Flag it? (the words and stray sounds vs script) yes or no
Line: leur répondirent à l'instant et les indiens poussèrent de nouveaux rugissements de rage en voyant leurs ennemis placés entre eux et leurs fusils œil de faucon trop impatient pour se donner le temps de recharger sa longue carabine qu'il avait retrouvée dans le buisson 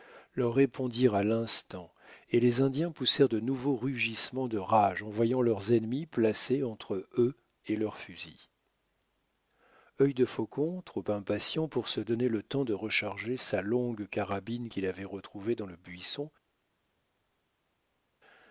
no